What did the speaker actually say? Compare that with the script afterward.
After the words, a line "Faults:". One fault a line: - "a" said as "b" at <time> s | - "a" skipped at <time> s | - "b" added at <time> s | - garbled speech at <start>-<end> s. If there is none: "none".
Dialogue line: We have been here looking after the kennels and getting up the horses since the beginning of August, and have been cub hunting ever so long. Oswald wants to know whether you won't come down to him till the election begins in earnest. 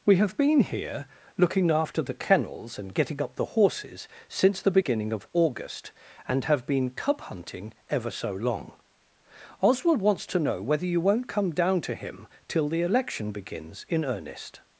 We have been here looking after the kennels and getting up the horses since the beginning of August, and have been cub hunting ever so long. Oswald wants to know whether you won't come down to him till the election begins in earnest.
Faults:
none